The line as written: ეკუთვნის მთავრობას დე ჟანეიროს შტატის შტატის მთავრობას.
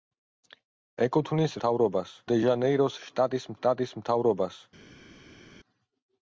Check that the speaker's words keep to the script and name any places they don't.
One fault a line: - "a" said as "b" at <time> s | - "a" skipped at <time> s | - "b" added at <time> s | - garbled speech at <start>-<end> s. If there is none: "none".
none